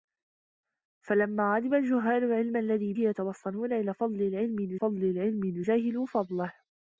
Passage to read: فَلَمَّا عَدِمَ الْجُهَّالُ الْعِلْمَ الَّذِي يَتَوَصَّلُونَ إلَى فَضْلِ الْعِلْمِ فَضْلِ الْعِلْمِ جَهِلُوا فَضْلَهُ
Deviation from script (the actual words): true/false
false